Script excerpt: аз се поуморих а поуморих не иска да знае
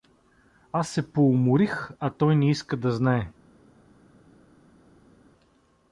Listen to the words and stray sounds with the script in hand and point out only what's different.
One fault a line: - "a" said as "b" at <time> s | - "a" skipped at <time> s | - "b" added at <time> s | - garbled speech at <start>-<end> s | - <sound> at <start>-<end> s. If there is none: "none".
- "поуморих" said as "той" at 2.1 s